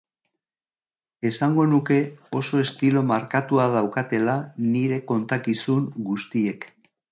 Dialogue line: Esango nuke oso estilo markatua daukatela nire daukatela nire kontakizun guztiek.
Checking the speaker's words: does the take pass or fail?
fail